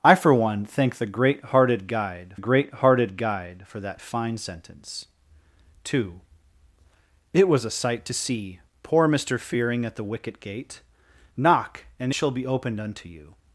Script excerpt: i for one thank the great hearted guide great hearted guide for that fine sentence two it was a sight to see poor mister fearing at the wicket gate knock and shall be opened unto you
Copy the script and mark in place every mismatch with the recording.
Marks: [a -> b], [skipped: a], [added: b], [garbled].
i for one thank the great hearted guide great hearted guide for that fine sentence two it was a sight to see poor mister fearing at the wicket gate knock and shall be opened unto you